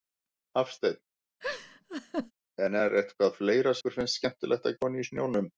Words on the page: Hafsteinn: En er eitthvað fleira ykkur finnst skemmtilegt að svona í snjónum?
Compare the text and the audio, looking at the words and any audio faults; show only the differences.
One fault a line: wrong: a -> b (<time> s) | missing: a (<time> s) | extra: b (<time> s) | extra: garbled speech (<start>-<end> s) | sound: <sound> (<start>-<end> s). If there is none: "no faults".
sound: laugh (1.4-2.3 s)